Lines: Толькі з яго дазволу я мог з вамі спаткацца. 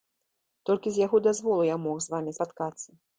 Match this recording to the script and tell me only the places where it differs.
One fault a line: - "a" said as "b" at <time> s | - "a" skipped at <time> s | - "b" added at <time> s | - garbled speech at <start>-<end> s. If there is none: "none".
none